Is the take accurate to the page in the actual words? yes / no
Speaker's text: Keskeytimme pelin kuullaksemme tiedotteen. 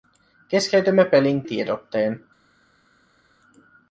no